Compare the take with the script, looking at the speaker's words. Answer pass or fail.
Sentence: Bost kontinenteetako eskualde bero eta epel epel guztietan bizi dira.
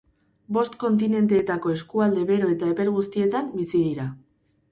fail